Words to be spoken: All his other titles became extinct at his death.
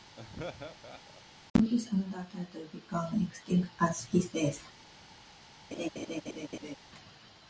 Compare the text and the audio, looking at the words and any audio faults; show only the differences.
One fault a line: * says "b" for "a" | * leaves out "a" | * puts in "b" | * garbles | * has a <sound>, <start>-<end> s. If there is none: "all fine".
* has a laugh, 0.1-1.2 s
* has a laugh, 5.7-6.8 s